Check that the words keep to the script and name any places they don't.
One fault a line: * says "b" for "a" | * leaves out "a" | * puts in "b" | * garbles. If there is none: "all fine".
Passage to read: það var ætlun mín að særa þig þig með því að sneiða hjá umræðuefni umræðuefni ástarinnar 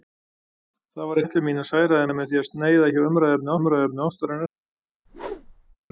all fine